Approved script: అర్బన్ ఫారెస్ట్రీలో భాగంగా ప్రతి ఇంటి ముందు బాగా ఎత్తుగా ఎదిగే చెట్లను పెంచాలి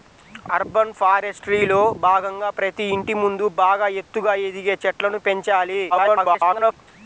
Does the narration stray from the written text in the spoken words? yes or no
yes